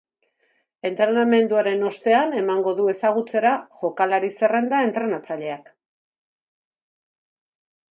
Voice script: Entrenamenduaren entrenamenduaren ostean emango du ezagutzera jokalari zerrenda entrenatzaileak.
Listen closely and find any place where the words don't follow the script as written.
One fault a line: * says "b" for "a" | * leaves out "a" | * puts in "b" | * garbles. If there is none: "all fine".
* leaves out "entrenamenduaren"